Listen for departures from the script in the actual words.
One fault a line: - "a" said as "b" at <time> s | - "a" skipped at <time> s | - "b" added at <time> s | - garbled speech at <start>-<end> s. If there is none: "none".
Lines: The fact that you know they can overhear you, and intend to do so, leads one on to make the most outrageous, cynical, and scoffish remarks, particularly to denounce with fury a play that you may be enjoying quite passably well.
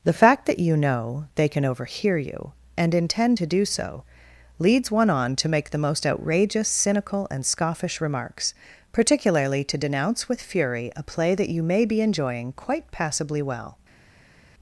none